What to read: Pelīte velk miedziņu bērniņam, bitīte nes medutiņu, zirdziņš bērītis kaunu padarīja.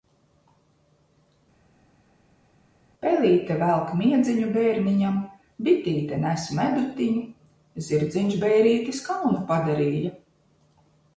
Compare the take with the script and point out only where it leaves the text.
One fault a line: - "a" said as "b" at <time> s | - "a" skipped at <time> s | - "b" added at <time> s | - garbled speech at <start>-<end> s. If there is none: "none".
none